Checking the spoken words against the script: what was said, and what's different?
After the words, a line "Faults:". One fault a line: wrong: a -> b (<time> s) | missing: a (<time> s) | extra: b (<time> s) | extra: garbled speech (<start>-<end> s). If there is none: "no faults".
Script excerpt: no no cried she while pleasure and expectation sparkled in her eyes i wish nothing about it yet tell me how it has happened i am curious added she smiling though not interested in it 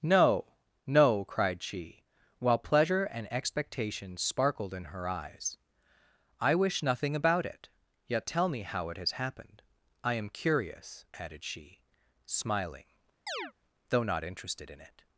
no no cried she while pleasure and expectation sparkled in her eyes i wish nothing about it yet tell me how it has happened i am curious added she smiling though not interested in it
Faults:
no faults